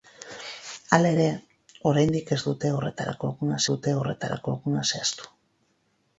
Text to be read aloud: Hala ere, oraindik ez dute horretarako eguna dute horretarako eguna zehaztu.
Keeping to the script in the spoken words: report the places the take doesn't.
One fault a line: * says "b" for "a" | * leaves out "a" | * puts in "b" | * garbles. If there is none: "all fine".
all fine